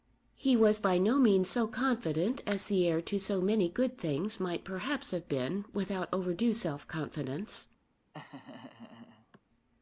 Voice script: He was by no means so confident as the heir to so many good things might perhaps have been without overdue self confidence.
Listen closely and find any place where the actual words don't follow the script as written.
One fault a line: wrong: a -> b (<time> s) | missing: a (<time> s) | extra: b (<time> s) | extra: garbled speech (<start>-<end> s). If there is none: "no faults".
no faults